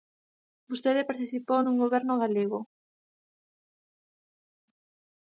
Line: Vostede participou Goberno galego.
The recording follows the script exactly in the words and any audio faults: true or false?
false